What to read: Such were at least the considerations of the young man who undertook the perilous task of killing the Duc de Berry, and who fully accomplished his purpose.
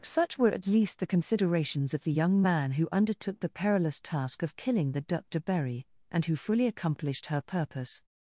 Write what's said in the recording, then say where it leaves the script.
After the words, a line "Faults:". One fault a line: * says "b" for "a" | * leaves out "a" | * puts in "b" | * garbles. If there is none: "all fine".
Such were at least the considerations of the young man who undertook the perilous task of killing the Duc de Berry, and who fully accomplished her purpose.
Faults:
* says "her" for "his"